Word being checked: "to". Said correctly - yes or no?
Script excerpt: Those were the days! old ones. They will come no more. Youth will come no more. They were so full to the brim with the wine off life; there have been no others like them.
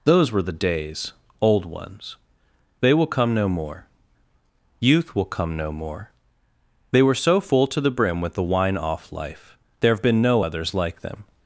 yes